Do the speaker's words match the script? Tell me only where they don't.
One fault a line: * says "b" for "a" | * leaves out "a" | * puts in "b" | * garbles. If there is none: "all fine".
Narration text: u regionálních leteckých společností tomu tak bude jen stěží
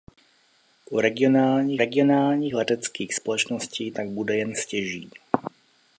* puts in "regionálních"
* leaves out "tomu"